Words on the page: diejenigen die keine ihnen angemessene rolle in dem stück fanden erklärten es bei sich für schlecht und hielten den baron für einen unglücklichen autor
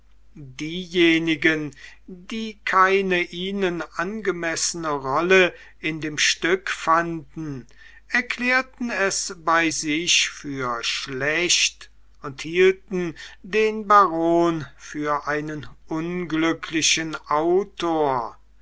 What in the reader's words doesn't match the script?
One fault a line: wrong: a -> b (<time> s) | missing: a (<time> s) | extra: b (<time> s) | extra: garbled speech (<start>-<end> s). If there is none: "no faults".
no faults